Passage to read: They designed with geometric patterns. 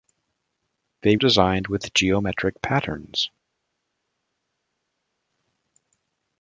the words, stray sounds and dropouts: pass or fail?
pass